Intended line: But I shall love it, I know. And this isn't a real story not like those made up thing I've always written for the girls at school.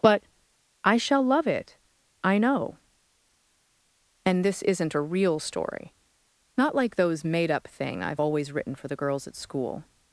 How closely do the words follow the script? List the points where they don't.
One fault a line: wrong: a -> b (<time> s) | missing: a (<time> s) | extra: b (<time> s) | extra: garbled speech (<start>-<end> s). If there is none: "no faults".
no faults